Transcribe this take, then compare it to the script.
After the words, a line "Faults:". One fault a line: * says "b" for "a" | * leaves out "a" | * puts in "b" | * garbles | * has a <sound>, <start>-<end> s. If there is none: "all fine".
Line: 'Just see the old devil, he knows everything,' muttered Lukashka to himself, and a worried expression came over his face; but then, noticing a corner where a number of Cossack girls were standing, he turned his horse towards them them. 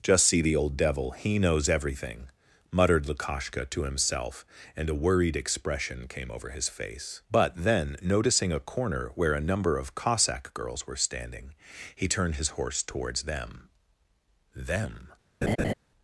'Just see the old devil, he knows everything,' muttered Lukashka to himself, and a worried expression came over his face; but then, noticing a corner where a number of Cossack girls were standing, he turned his horse towards them them.
Faults:
* has a laugh, 15.4-15.7 s